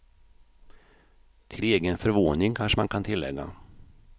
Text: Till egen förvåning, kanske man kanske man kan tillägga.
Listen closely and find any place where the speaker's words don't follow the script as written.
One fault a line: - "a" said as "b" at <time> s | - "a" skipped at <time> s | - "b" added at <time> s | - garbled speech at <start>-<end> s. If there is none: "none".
- "kanske man" skipped at 2.9 s